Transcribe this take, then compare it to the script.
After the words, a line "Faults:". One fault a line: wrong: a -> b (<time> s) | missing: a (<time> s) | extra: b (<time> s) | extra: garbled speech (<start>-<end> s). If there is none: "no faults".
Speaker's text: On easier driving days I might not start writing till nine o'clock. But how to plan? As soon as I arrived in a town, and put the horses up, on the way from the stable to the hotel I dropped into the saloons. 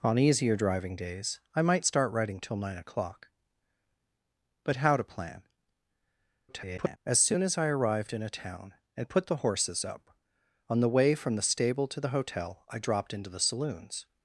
On easier driving days I might start writing till nine o'clock. But how to plan? [garbled] As soon as I arrived in a town, and put the horses up, on the way from the stable to the hotel I dropped into the saloons.
Faults:
missing: not (1.9 s)
extra: garbled speech (6.5-7.0 s)